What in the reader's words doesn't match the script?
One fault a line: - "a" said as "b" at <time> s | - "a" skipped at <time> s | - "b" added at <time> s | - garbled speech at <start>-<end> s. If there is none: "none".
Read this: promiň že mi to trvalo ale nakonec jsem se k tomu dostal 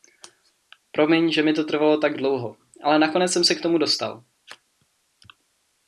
- "tak dlouho" added at 2.0 s